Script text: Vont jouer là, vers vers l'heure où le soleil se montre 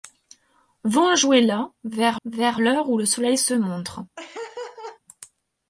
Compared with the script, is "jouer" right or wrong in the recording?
right